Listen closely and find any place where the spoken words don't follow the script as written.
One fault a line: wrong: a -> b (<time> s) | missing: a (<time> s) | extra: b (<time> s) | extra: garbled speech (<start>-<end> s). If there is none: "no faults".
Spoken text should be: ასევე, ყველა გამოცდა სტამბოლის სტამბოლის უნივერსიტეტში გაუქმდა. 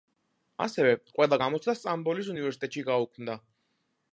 missing: სტამბოლის (2.3 s)